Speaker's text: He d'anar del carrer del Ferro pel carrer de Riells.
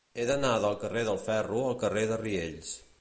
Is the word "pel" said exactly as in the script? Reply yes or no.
no